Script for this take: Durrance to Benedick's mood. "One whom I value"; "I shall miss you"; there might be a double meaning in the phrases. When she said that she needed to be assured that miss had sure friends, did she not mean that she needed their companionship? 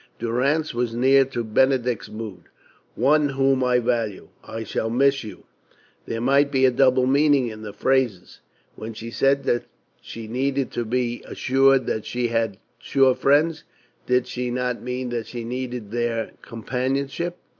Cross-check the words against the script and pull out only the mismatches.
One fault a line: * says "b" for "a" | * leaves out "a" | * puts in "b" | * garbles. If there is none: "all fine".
* puts in "was near"
* says "she" for "miss"